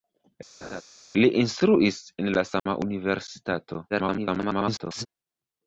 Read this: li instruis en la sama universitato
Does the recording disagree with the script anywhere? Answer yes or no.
yes